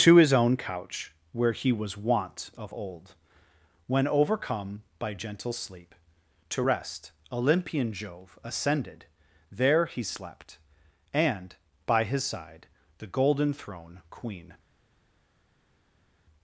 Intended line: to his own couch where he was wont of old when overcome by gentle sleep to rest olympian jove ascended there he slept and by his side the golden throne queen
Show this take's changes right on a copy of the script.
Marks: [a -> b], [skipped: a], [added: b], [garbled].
to his own couch where he was wont of old when overcome by gentle sleep to rest olympian jove ascended there he slept and by his side the golden throne queen